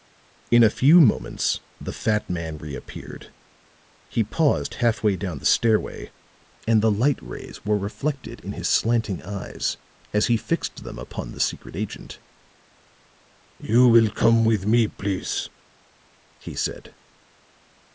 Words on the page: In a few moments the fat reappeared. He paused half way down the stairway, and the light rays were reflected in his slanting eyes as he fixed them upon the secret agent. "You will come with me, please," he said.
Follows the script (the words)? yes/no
no